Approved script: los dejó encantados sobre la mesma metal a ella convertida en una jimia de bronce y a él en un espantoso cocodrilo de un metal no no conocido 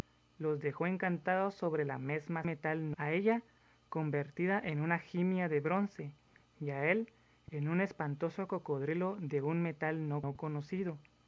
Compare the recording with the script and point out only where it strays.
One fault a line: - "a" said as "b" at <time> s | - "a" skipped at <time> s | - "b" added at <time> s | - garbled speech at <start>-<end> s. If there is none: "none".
none